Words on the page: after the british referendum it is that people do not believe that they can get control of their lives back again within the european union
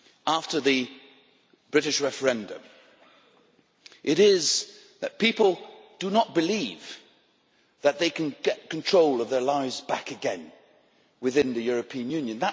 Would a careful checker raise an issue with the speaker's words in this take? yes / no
no